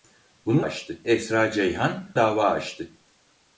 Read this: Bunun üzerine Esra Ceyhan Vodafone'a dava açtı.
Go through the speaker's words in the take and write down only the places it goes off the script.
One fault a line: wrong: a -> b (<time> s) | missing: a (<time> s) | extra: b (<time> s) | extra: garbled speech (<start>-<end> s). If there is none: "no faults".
wrong: üzerine -> açtı (0.6 s)
missing: Vodafone'a (2.1 s)